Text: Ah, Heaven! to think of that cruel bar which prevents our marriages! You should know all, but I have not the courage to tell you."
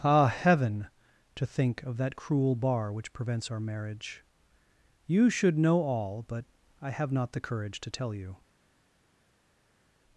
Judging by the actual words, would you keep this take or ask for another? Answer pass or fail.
fail